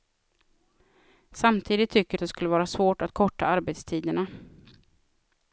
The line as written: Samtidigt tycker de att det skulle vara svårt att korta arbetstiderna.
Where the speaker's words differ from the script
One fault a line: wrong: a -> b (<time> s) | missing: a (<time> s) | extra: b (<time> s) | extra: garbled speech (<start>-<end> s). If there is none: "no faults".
missing: de (2.2 s)